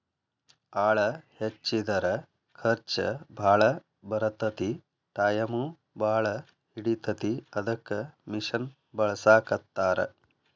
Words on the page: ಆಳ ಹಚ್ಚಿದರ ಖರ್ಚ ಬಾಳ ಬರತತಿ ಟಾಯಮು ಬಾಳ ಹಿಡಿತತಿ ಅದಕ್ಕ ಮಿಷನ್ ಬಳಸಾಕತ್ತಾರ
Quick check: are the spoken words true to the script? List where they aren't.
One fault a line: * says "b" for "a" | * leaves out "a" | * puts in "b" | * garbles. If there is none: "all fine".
all fine